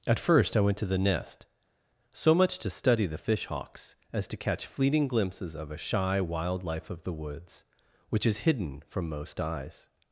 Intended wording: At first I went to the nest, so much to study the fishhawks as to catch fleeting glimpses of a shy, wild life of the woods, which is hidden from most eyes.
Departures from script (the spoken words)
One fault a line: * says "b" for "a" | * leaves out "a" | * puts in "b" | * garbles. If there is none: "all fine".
all fine